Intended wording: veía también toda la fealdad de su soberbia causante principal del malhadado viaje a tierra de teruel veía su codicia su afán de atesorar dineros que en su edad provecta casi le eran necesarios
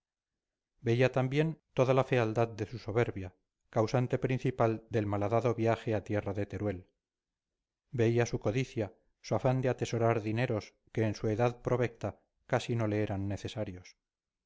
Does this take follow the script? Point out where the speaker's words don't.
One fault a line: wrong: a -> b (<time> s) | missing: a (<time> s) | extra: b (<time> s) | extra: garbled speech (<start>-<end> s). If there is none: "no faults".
extra: no (12.8 s)